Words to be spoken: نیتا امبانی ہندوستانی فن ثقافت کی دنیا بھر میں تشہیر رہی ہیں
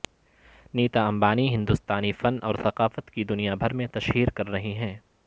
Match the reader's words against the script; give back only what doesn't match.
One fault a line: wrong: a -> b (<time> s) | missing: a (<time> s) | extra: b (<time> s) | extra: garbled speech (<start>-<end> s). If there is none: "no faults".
extra: اور (2.4 s)
extra: کر (4.3 s)